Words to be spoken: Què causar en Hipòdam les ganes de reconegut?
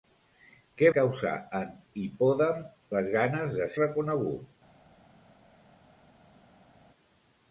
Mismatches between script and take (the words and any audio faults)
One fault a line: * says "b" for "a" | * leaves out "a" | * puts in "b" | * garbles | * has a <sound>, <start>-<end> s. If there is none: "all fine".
all fine